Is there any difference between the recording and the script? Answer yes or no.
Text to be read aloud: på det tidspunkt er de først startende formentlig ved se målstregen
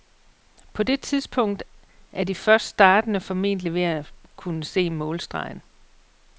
yes